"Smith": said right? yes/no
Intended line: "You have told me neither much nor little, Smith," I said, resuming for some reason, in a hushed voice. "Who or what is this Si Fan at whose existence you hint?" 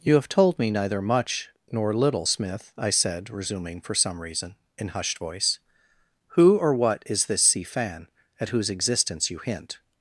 yes